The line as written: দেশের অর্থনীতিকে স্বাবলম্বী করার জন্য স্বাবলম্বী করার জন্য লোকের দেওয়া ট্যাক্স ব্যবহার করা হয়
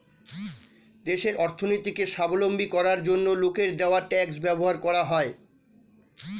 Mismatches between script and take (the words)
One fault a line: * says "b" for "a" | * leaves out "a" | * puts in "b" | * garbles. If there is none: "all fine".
* leaves out "স্বাবলম্বী করার জন্য"